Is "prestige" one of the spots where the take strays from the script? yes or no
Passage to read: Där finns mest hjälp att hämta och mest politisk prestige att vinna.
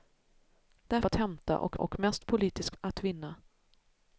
yes